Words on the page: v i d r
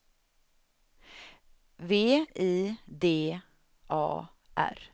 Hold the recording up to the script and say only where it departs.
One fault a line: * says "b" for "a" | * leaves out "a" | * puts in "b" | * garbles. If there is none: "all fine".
* puts in "a"